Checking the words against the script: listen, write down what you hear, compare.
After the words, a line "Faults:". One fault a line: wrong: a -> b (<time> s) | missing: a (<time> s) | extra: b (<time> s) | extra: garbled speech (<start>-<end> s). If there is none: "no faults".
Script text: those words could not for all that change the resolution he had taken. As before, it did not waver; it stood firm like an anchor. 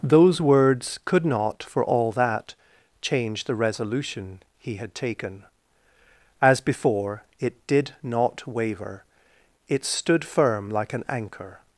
those words could not for all that change the resolution he had taken. As before, it did not waver; it stood firm like an anchor.
Faults:
no faults